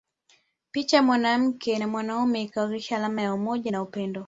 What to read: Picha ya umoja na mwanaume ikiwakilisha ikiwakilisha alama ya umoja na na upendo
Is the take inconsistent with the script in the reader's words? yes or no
yes